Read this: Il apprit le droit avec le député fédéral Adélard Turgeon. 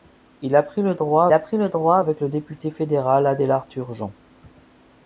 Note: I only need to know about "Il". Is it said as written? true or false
true